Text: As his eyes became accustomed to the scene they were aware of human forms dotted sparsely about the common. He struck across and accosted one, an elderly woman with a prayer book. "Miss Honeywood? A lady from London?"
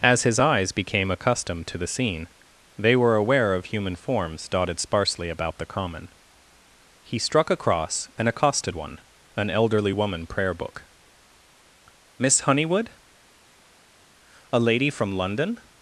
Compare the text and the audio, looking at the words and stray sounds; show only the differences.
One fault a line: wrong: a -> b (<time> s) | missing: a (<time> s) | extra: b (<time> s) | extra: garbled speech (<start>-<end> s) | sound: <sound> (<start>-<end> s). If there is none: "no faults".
missing: with a (10.3 s)